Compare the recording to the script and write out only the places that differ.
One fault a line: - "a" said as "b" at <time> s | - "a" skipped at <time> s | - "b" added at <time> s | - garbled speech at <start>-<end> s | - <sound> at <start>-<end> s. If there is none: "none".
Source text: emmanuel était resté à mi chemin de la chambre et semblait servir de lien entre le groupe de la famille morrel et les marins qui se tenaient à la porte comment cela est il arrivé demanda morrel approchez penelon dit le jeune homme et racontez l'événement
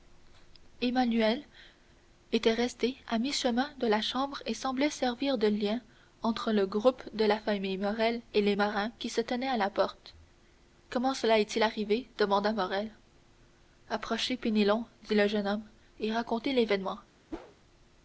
- whoosh at 17.3-17.6 s